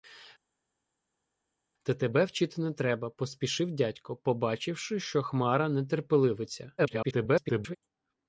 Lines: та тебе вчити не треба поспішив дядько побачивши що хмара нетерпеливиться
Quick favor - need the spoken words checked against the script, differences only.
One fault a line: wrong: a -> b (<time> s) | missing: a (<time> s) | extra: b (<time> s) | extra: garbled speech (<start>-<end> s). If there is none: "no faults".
extra: garbled speech (6.8-7.8 s)